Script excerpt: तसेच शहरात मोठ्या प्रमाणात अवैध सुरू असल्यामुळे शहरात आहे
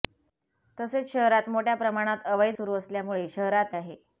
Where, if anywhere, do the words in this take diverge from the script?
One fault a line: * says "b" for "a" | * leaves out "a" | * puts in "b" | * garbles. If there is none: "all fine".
all fine